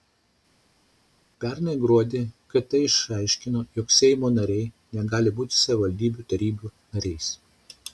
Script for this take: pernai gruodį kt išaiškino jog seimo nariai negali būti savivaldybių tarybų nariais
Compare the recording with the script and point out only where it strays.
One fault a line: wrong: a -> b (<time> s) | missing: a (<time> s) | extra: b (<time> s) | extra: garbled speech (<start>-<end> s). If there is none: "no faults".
no faults